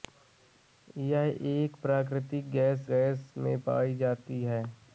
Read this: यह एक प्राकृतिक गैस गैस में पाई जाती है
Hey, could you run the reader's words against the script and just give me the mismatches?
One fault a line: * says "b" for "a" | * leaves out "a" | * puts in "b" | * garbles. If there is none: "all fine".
all fine